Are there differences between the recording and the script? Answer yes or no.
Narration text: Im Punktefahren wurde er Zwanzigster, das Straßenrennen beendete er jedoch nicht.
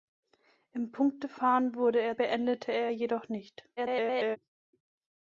yes